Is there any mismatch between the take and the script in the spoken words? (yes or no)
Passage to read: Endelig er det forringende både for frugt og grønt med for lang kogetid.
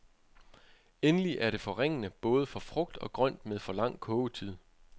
no